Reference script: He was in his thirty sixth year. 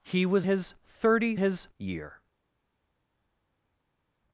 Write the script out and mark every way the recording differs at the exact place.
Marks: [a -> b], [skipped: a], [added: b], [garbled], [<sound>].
He was [skipped: in] his thirty [sixth -> his] year.